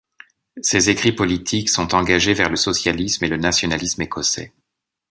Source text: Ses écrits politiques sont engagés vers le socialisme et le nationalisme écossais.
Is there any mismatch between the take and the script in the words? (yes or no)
no